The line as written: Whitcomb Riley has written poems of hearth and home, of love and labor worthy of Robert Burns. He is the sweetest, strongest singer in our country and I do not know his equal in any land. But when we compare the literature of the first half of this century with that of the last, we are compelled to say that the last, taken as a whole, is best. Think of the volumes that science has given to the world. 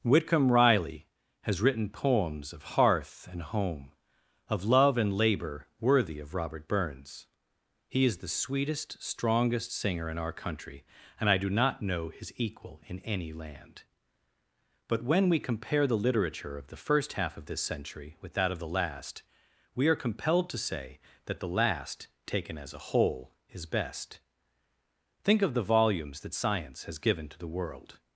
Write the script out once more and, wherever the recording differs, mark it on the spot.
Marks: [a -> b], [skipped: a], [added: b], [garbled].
Whitcomb Riley has written poems of hearth and home, of love and labor worthy of Robert Burns. He is the sweetest, strongest singer in our country and I do not know his equal in any land. But when we compare the literature of the first half of this century with that of the last, we are compelled to say that the last, taken as a whole, is best. Think of the volumes that science has given to the world.